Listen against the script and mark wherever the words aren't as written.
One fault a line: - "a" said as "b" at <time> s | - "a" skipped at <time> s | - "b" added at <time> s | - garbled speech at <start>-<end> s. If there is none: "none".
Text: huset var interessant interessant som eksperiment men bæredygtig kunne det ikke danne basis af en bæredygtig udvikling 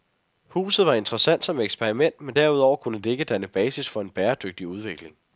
- "interessant" skipped at 1.4 s
- "bæredygtig" said as "derudover" at 2.3 s
- "af" said as "for" at 3.9 s